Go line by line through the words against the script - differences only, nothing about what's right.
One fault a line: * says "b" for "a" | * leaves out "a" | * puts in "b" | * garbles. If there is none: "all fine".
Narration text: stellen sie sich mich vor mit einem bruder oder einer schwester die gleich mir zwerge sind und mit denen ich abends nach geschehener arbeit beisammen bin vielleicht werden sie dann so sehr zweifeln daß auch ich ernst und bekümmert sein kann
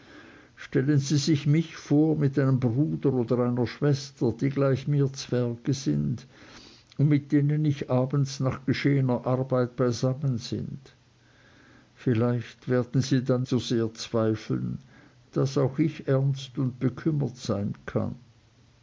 all fine